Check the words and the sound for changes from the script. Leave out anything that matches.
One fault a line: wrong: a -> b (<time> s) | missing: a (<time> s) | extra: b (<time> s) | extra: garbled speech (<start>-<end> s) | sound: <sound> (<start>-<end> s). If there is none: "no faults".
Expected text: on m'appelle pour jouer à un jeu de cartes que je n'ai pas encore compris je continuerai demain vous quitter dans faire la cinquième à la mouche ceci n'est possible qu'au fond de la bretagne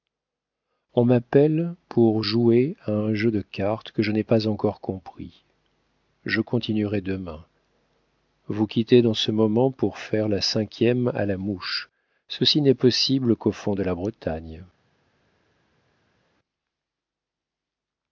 extra: ce moment pour (9.1 s)